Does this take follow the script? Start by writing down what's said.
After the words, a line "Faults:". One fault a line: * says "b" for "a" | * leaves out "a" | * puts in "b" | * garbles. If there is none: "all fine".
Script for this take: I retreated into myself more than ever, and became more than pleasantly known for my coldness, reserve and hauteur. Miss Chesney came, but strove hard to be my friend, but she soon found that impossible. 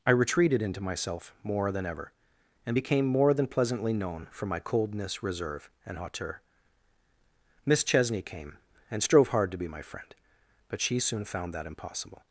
I retreated into myself more than ever, and became more than pleasantly known for my coldness, reserve and hauteur. Miss Chesney came, and strove hard to be my friend, but she soon found that impossible.
Faults:
* says "and" for "but"